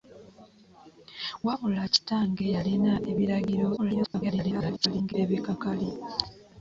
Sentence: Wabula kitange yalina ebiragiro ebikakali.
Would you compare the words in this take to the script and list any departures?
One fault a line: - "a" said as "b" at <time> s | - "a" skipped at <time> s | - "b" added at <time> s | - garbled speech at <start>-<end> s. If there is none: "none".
- garbled speech at 3.8-5.1 s